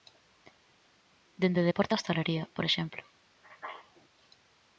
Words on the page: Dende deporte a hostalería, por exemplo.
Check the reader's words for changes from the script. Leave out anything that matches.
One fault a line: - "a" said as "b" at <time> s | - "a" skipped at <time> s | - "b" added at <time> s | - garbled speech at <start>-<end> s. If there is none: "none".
none